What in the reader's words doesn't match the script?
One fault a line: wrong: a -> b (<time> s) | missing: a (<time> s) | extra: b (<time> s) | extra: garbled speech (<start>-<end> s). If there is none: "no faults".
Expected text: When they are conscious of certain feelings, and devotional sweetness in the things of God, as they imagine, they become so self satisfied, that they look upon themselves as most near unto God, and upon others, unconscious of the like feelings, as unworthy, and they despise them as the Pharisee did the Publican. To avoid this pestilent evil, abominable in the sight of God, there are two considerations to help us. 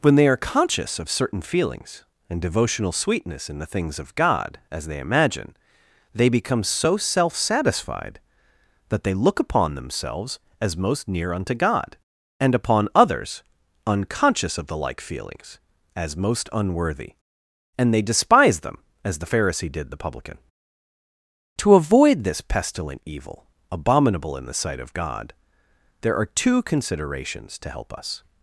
extra: most (16.2 s)